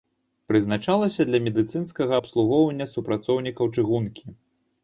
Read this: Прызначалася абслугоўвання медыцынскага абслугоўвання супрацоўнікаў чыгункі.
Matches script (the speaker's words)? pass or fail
fail